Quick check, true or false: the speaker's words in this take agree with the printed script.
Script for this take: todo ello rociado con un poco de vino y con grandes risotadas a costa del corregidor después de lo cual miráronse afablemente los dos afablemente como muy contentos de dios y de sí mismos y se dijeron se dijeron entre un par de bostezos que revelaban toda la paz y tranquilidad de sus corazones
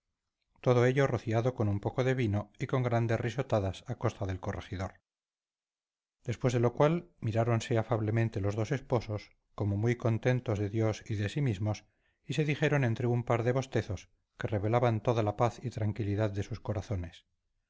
false